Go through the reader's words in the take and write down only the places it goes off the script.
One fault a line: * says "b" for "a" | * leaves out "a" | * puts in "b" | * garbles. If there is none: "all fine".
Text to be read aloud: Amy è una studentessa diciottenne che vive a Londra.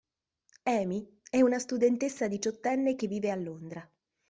all fine